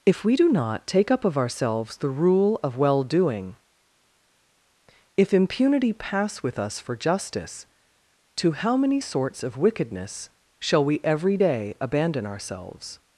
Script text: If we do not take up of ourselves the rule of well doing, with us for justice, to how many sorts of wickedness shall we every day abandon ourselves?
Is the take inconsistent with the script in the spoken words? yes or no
yes